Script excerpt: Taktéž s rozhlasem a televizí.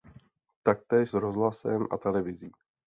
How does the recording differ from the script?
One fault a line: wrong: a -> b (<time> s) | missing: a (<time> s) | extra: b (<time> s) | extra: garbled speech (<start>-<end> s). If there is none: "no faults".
no faults